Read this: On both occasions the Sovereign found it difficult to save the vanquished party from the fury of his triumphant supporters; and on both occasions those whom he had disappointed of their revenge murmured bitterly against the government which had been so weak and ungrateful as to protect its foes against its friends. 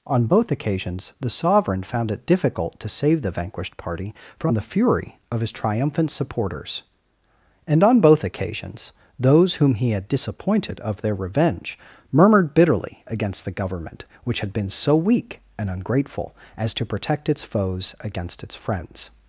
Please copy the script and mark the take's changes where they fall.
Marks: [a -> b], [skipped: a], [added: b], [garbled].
On both occasions the Sovereign found it difficult to save the vanquished party from the fury of his triumphant supporters; and on both occasions those whom he had disappointed of their revenge murmured bitterly against the government which had been so weak and ungrateful as to protect its foes against its friends.